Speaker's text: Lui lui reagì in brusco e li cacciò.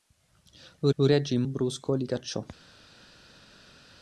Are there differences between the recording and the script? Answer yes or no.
no